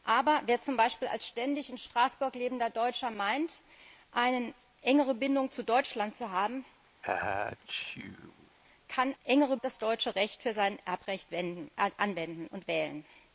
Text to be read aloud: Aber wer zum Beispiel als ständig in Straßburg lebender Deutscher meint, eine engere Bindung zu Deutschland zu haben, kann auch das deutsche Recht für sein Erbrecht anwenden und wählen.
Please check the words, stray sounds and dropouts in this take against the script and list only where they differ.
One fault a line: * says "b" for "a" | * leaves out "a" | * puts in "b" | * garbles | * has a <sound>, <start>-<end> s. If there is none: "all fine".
* has a sneeze, 7.0-8.6 s
* says "engere" for "auch"